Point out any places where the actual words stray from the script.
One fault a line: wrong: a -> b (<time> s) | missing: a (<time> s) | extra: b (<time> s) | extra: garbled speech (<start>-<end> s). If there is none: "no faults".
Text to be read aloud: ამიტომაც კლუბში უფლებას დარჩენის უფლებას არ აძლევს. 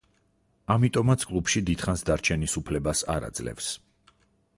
wrong: უფლებას -> დიდხანს (1.7 s)